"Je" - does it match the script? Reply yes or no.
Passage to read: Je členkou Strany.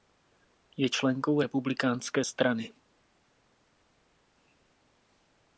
yes